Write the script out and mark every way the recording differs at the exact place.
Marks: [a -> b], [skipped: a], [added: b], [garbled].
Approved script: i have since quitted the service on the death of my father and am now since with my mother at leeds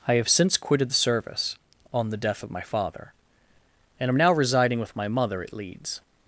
i have since quitted the service on the death of my father and am now [since -> residing] with my mother at leeds